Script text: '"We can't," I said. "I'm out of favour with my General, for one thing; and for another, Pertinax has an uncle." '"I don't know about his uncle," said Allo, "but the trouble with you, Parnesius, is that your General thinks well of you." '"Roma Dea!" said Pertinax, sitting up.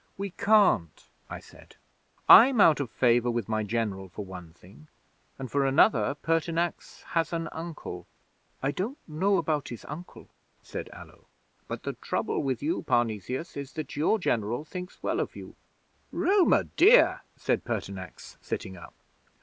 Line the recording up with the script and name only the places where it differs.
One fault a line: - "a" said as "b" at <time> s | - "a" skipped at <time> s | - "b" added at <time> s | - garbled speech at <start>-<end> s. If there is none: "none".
none